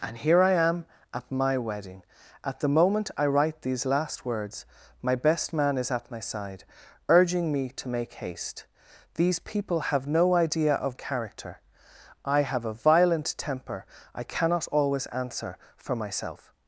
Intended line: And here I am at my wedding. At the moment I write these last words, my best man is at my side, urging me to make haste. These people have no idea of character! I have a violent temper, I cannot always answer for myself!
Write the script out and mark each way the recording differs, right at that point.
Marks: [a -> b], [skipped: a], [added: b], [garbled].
And here I am at my wedding. At the moment I write these last words, my best man is at my side, urging me to make haste. These people have no idea of character! I have a violent temper, I cannot always answer for myself!